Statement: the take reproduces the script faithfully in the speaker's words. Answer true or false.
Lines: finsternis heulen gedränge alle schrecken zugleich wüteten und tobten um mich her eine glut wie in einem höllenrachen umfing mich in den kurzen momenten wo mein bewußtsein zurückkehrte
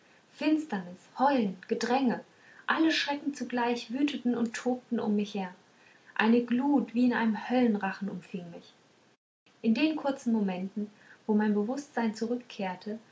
true